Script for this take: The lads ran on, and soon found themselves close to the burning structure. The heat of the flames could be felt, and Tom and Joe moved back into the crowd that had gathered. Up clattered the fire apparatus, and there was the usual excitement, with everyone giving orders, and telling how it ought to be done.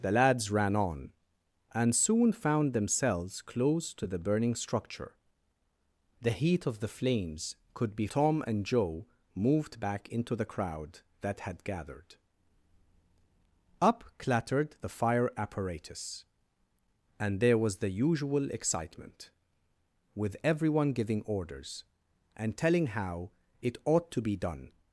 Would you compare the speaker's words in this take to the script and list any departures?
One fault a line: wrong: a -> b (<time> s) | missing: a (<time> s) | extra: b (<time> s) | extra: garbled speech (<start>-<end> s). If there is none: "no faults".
missing: felt and (8.1 s)